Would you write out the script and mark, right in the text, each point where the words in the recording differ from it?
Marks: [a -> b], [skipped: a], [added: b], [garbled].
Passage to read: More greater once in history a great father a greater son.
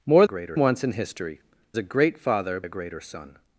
More greater once in history a great father a greater son.